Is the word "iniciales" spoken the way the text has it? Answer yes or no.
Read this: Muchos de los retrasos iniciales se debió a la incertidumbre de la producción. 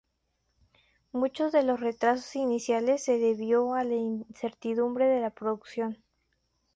yes